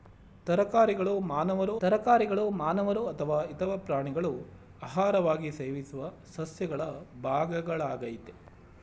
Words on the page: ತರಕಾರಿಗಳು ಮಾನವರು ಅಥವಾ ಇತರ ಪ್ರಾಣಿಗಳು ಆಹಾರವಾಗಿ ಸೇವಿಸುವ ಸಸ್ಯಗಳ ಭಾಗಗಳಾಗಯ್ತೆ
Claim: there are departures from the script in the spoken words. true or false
true